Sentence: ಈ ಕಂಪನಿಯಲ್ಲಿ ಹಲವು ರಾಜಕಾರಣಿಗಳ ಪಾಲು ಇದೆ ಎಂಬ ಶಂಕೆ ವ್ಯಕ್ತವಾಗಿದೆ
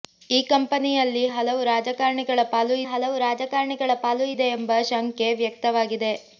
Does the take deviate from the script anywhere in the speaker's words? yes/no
yes